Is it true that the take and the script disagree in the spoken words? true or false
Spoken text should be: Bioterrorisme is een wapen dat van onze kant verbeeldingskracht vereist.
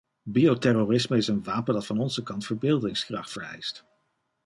false